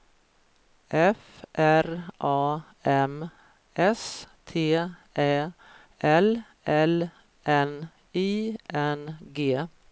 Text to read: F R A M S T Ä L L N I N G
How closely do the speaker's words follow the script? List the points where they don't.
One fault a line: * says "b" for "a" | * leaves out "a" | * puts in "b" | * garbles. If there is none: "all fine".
all fine